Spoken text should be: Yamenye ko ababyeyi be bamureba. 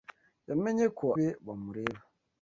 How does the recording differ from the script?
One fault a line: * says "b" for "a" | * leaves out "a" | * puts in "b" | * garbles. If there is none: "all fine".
* leaves out "ababyeyi"